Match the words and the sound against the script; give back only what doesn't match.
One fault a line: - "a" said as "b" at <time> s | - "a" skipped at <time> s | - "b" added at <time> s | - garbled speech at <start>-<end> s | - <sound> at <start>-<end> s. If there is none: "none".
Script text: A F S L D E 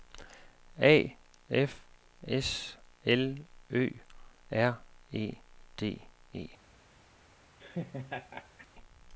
- "Ø R E" added at 3.7 s
- laugh at 7.6-8.7 s